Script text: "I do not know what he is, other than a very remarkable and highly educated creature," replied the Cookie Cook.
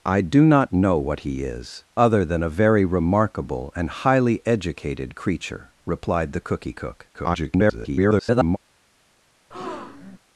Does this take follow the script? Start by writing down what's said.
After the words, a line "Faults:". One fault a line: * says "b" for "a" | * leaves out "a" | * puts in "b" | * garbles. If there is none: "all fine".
"I do not know what he is, other than a very remarkable and highly educated creature," replied the Cookie Cook. [garbled]
Faults:
* garbles